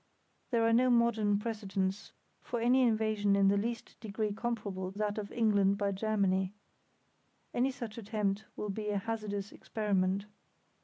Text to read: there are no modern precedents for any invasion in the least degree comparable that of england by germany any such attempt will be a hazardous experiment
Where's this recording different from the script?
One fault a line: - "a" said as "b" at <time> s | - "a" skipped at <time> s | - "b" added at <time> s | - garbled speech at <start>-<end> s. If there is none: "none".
none